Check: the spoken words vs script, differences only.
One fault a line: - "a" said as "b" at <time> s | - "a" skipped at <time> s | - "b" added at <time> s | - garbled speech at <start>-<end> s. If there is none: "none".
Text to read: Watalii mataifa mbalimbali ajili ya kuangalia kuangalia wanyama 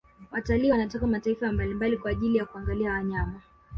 - "wanatoka" added at 0.7 s
- "kwa" added at 2.0 s
- "kuangalia" skipped at 2.9 s